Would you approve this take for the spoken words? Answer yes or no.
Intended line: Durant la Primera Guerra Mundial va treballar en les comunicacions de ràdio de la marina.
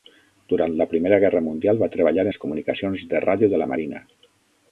no